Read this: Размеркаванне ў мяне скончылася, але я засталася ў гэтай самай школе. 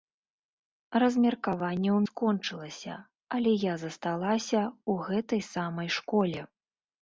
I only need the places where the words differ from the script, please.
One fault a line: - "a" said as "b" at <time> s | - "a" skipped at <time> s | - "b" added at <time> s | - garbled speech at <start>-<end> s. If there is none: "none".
- "мяне" skipped at 2.0 s